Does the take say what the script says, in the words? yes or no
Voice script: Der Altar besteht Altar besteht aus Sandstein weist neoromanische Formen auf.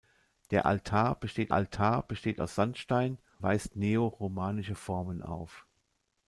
yes